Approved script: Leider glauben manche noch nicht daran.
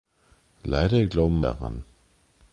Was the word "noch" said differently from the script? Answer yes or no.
yes